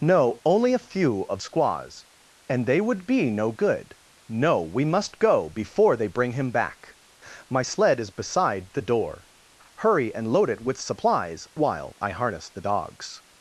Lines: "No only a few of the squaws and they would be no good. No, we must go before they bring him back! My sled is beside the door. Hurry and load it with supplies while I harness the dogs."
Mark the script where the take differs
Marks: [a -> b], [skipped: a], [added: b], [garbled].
"No only a few of [skipped: the] squaws and they would be no good. No, we must go before they bring him back! My sled is beside the door. Hurry and load it with supplies while I harness the dogs."